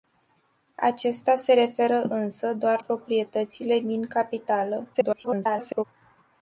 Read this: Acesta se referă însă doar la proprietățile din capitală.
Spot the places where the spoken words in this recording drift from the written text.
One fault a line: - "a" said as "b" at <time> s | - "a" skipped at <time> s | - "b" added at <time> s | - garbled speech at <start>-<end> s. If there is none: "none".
- "la" skipped at 2.8 s
- garbled speech at 4.9-5.8 s